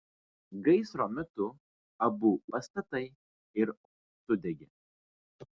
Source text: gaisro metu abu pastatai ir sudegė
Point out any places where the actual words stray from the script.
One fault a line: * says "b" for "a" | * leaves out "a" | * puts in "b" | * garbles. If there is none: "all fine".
all fine